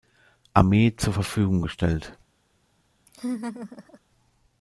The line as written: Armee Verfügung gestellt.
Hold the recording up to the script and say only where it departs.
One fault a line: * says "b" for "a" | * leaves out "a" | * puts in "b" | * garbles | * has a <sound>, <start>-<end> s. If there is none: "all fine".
* puts in "zur"
* has a laugh, 3.1-4.0 s